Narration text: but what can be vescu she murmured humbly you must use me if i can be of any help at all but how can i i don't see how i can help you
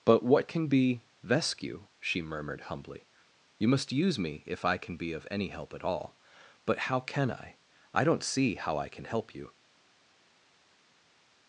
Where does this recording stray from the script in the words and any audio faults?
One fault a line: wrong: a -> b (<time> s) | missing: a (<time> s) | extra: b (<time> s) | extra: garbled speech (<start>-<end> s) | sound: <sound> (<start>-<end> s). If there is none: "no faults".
no faults